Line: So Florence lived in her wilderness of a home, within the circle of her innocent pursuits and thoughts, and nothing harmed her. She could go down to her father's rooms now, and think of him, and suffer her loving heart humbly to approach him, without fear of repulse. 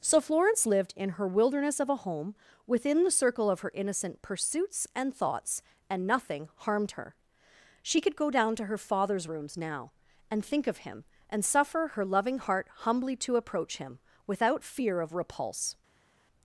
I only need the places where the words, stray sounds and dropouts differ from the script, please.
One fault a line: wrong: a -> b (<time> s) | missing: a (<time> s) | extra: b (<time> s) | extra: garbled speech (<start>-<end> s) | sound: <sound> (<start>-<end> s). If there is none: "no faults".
no faults